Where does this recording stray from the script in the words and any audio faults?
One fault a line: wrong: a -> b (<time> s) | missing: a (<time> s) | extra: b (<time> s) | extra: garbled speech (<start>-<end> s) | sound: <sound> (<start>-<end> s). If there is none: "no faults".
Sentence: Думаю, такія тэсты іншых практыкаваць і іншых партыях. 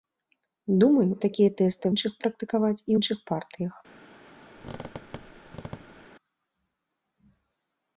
sound: squeak (4.6-6.1 s)